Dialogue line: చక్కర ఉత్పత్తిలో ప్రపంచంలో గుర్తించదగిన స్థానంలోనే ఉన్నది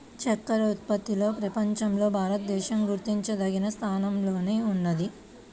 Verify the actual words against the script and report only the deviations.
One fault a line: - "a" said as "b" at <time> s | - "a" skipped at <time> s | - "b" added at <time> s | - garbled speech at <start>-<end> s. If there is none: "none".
- "భారతదేశం" added at 2.2 s